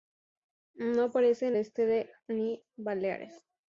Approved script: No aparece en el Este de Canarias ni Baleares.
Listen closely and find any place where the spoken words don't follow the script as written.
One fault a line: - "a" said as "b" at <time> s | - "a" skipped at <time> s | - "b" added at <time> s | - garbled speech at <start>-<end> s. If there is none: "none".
- "el" skipped at 1.6 s
- "Canarias" skipped at 2.1 s